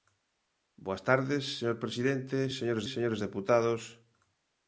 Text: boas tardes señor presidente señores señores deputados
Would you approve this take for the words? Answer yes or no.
yes